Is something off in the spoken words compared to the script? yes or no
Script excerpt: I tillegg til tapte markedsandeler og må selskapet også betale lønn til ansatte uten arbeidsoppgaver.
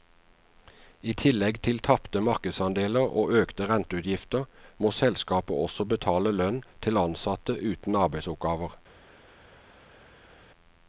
yes